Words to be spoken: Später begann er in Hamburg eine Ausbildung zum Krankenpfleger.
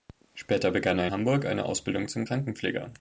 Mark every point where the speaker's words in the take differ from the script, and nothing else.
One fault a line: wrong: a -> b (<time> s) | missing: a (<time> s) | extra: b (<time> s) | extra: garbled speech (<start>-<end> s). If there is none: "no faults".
missing: in (1.1 s)